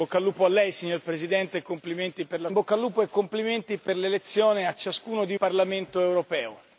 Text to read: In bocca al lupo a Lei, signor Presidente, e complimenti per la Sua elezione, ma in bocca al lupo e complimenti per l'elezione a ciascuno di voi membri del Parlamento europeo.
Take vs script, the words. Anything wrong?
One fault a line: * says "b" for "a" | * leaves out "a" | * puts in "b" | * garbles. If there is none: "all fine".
* leaves out "Sua elezione ma"
* leaves out "voi membri del"